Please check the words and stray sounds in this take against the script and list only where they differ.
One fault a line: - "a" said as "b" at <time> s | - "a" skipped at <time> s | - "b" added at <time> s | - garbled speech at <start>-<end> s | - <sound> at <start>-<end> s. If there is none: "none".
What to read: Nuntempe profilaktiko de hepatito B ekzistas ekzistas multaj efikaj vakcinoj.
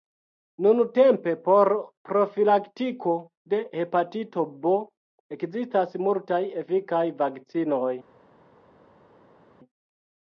- "por" added at 1.5 s
- "ekzistas" skipped at 6.0 s